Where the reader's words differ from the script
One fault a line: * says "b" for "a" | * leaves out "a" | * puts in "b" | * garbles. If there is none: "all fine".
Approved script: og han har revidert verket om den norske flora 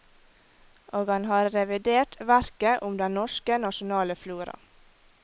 * puts in "nasjonale"